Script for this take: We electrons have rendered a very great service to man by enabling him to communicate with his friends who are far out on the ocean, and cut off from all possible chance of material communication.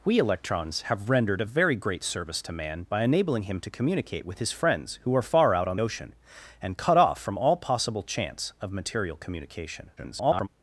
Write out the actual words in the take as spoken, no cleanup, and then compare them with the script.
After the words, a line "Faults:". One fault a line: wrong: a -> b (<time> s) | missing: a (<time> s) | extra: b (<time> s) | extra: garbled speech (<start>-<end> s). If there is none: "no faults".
We electrons have rendered a very great service to man by enabling him to communicate with his friends who are far out on ocean, and cut off from all possible chance of material communication. [garbled]
Faults:
missing: the (5.8 s)
extra: garbled speech (10.0-10.5 s)